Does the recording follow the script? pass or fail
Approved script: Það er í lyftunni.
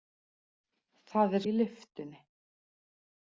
pass